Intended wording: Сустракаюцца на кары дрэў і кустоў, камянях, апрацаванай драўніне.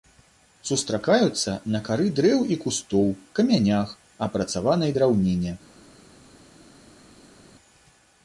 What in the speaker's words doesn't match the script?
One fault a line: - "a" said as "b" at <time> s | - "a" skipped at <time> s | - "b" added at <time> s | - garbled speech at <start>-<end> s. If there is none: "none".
none